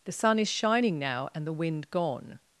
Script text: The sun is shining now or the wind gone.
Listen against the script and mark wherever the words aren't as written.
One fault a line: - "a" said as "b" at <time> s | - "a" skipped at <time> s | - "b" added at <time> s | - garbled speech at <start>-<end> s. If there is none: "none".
- "or" said as "and" at 1.3 s